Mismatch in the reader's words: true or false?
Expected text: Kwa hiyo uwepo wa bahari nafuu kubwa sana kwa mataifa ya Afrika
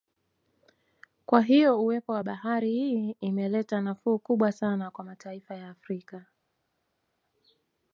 true